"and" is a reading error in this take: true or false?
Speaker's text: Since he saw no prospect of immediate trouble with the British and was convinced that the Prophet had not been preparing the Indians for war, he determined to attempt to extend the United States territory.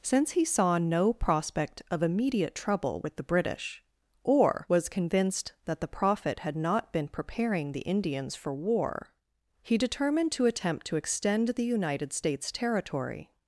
true